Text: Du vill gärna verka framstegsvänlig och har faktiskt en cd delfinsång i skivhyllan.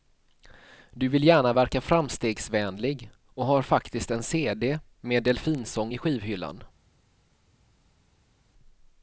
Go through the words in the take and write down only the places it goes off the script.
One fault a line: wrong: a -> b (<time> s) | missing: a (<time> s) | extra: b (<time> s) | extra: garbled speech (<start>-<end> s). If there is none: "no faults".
extra: med (5.0 s)